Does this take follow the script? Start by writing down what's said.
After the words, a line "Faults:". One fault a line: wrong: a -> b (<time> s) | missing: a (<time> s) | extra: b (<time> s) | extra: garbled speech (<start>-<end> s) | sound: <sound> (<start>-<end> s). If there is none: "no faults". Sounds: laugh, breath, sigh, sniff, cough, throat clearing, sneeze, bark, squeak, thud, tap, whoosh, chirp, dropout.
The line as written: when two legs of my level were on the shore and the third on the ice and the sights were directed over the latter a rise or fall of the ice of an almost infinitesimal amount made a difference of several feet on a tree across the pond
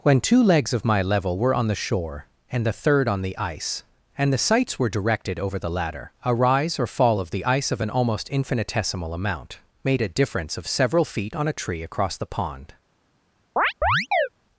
when two legs of my level were on the shore and the third on the ice and the sights were directed over the latter a rise or fall of the ice of an almost infinitesimal amount made a difference of several feet on a tree across the pond
Faults:
sound: chirp (13.6-14.3 s)